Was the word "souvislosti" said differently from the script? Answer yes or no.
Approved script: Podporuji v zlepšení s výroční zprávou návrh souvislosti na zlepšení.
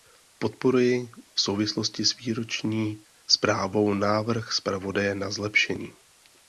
yes